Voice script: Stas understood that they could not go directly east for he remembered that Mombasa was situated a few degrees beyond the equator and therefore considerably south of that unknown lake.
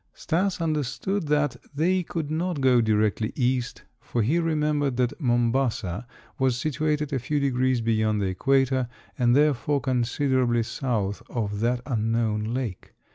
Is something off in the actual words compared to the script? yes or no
no